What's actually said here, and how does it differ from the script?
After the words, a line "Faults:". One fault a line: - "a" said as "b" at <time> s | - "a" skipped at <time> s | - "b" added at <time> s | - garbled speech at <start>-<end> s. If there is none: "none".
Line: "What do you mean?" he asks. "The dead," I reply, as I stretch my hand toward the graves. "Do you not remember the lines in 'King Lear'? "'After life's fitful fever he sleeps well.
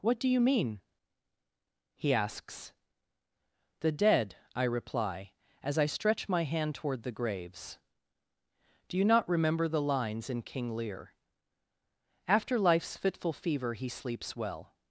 "What do you mean?" he asks. "The dead," I reply, as I stretch my hand toward the graves. "Do you not remember the lines in 'King Lear'? "'After life's fitful fever he sleeps well.
Faults:
none